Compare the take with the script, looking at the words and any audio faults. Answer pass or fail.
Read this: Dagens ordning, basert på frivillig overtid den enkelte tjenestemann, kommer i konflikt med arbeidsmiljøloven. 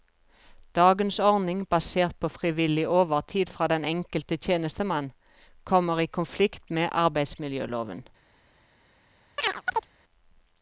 fail